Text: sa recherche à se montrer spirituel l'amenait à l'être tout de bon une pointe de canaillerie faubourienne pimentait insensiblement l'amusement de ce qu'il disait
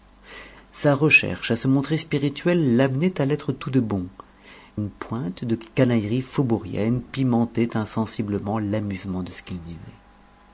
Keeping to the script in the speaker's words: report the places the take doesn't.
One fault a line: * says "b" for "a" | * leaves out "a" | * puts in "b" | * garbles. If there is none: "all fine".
all fine